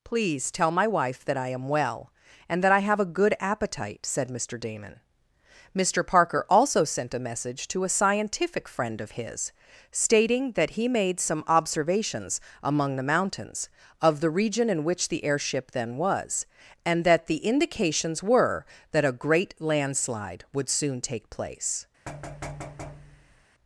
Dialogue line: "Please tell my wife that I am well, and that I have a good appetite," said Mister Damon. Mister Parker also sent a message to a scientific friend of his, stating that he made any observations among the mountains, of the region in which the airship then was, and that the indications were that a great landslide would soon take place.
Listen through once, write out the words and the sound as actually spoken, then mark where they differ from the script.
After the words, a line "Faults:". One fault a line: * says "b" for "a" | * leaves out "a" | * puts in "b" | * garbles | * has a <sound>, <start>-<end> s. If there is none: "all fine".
"Please tell my wife that I am well, and that I have a good appetite," said Mister Damon. Mister Parker also sent a message to a scientific friend of his, stating that he made some observations among the mountains, of the region in which the airship then was, and that the indications were that a great landslide would soon take place.
Faults:
* says "some" for "any"
* has a thud, 22.1-23.4 s